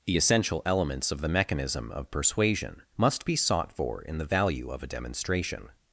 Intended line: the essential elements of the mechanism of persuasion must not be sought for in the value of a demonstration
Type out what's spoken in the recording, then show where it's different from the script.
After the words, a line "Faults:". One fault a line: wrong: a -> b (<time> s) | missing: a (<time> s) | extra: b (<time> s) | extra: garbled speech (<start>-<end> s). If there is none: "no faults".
the essential elements of the mechanism of persuasion must be sought for in the value of a demonstration
Faults:
missing: not (3.2 s)